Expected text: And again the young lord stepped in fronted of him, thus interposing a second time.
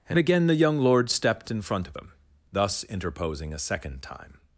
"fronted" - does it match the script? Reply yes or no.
no